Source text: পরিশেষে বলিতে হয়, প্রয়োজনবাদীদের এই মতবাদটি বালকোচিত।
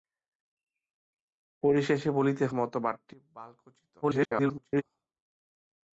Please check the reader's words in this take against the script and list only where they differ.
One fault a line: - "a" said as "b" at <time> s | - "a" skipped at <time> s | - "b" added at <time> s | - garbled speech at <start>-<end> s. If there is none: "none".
- "হয় প্রয়োজনবাদীদের এই" skipped at 2.5 s
- garbled speech at 4.0-4.8 s